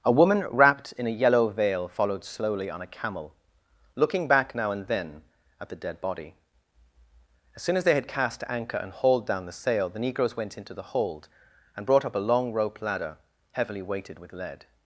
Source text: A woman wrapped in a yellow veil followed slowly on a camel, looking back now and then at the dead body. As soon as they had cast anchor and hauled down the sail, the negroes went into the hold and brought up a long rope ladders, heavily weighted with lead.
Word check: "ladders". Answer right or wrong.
wrong